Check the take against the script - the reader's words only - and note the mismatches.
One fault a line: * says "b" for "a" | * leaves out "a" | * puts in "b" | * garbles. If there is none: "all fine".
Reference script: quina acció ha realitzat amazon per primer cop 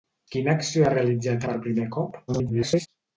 * leaves out "amazon"
* garbles